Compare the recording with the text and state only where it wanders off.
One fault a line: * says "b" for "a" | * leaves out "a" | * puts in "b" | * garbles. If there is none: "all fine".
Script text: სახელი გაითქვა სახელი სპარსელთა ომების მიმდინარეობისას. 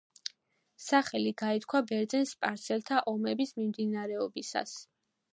* says "ბერძენ" for "სახელი"